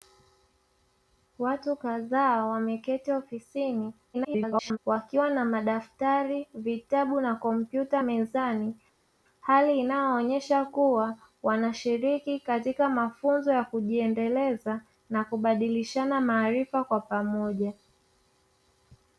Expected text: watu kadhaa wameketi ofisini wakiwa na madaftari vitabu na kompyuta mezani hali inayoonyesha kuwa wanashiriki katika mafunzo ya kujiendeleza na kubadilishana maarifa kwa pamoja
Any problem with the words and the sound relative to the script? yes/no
yes